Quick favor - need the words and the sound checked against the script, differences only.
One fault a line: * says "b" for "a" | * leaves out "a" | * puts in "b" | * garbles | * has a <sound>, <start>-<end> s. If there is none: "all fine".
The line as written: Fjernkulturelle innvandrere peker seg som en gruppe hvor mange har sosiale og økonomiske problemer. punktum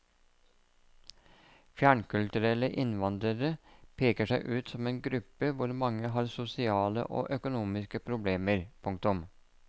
* puts in "ut"